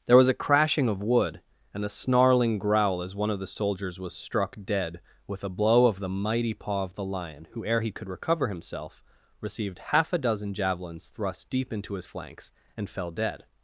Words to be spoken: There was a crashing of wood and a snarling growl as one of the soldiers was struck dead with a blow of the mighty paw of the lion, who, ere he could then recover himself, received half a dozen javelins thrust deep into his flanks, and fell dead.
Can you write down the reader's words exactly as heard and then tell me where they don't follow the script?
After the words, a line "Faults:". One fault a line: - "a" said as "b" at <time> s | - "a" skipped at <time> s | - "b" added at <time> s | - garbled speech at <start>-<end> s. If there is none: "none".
There was a crashing of wood and a snarling growl as one of the soldiers was struck dead with a blow of the mighty paw of the lion, who, ere he could recover himself, received half a dozen javelins thrust deep into his flanks, and fell dead.
Faults:
- "then" skipped at 8.1 s